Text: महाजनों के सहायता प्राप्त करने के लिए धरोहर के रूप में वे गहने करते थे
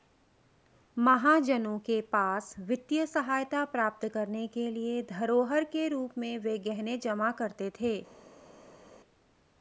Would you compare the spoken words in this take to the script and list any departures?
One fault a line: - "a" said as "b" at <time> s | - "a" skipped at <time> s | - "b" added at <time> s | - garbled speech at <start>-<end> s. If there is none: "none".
- "पास वित्तीय" added at 2.1 s
- "जमा" added at 7.0 s